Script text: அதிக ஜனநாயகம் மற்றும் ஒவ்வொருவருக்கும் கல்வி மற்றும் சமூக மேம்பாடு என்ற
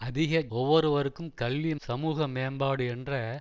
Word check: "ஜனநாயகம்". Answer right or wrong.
wrong